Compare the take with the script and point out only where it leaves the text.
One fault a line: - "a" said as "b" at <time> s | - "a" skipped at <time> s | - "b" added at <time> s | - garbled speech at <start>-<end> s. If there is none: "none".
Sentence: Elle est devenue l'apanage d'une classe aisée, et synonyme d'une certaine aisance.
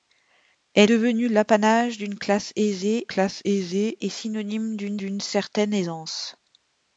- "est" skipped at 0.9 s
- "classe aisée" added at 3.1 s
- "d'une" added at 5.0 s